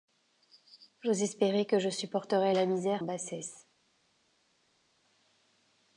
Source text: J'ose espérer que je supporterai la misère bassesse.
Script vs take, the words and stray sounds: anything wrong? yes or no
no